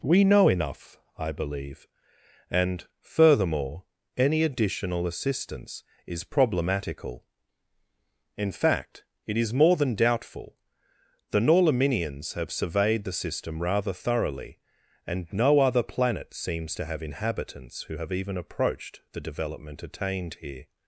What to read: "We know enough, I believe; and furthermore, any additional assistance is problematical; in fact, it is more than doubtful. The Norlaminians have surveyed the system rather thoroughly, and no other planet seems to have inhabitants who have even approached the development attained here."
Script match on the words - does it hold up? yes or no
yes